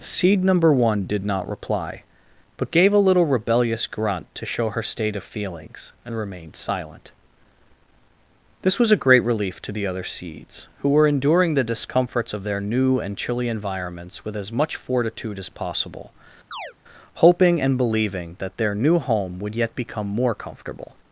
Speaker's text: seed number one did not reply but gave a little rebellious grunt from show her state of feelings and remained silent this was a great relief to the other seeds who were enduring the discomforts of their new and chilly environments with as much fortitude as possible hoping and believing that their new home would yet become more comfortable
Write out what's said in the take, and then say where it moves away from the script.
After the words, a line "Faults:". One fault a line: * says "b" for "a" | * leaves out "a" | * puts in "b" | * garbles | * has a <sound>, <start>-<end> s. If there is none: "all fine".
seed number one did not reply but gave a little rebellious grunt to show her state of feelings and remained silent this was a great relief to the other seeds who were enduring the discomforts of their new and chilly environments with as much fortitude as possible hoping and believing that their new home would yet become more comfortable
Faults:
* says "to" for "from"
* has a chirp, 16.5-16.7 s